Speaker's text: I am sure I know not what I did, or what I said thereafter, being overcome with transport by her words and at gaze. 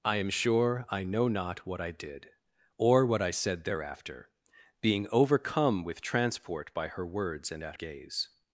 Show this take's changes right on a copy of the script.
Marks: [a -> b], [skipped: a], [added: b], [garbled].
I am sure I know not what I did, or what I said thereafter, being overcome with transport by her words and at gaze.